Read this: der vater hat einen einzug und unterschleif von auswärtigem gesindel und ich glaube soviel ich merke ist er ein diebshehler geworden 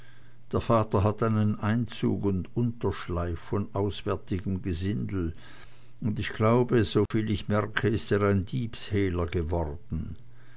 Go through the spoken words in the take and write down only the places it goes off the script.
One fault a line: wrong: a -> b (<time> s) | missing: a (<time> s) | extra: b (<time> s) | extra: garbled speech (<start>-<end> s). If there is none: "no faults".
no faults